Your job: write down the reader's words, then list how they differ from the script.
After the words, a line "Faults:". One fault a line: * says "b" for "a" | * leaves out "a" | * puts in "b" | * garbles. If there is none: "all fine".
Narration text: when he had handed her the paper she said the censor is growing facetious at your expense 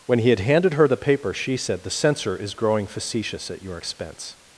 when he had handed her the paper she said the censor is growing facetious at your expense
Faults:
all fine